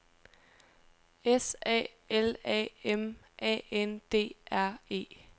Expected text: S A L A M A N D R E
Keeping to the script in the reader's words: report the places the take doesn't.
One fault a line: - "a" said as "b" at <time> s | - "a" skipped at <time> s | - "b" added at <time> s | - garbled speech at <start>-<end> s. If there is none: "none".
none